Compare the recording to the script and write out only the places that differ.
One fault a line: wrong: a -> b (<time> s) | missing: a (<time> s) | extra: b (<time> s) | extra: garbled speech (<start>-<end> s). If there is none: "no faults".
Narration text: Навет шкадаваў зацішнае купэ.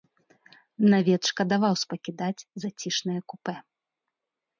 extra: спакідаць (1.8 s)